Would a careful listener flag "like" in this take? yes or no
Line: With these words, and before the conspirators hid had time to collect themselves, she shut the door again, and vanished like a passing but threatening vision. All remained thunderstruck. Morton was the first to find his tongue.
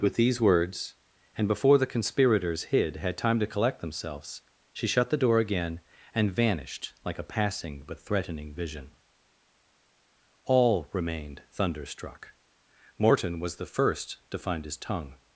no